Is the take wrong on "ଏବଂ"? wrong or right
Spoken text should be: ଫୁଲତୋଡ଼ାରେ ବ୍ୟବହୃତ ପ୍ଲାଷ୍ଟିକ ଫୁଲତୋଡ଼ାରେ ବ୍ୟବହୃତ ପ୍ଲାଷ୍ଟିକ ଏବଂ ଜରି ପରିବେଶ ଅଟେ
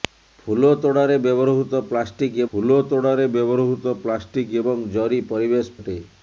right